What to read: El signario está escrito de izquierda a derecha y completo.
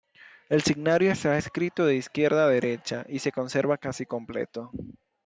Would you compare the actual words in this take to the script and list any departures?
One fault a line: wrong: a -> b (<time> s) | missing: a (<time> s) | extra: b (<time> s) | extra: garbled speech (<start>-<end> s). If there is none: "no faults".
extra: se conserva casi (3.2 s)